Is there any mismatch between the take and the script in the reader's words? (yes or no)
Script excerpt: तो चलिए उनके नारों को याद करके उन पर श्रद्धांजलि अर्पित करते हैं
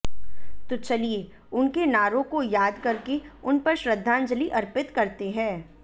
no